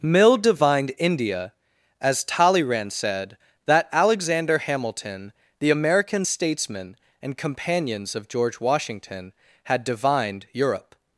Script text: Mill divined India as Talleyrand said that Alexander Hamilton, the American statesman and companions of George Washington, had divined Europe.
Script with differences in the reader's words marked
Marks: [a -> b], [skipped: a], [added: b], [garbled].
Mill divined India as Talleyrand said that Alexander Hamilton, the American statesman and companions of George Washington, had divined Europe.